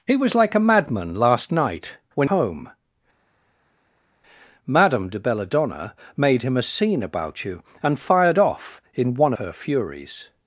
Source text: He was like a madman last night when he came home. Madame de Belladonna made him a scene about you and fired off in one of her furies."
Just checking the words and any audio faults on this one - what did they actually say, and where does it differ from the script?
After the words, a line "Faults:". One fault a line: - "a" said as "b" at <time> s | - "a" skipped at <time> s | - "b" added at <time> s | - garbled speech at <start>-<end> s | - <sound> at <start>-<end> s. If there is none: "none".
He was like a madman last night when home. Madame de Belladonna made him a scene about you and fired off in one her furies."
Faults:
- "he came" skipped at 2.3 s
- "of" skipped at 9.3 s